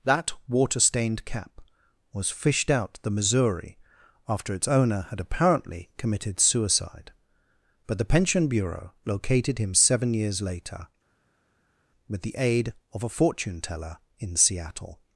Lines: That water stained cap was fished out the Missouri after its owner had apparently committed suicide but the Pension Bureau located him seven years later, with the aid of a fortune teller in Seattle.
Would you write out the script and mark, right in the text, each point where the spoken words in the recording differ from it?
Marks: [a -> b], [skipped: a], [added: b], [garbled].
That water stained cap was fished out the Missouri after its owner had apparently committed suicide but the Pension Bureau located him seven years later, with the aid of a fortune teller in Seattle.